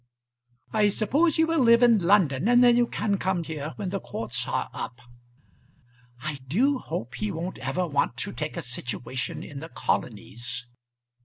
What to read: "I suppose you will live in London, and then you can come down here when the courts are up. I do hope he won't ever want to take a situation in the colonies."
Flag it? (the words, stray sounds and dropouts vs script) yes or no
yes